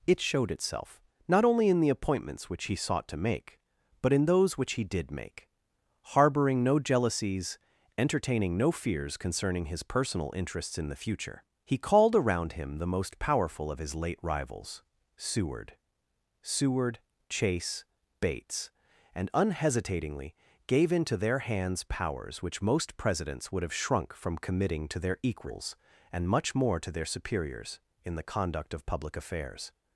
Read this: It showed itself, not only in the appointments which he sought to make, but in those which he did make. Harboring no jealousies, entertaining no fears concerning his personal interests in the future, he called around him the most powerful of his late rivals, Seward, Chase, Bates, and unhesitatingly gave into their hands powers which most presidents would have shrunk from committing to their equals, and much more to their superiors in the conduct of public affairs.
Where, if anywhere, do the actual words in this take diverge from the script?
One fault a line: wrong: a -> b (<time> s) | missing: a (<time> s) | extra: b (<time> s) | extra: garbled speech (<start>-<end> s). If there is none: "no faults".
extra: Seward (16.4 s)